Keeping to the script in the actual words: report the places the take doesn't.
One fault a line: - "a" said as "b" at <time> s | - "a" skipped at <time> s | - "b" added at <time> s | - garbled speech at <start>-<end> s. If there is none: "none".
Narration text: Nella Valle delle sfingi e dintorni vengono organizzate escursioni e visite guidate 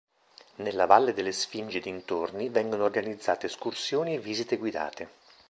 none